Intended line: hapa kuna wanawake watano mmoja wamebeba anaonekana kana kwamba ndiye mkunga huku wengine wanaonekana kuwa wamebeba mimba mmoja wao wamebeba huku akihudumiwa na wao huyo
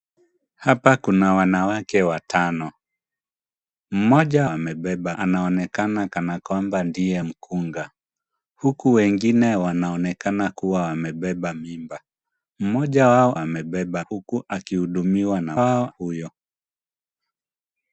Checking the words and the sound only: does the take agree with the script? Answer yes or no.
yes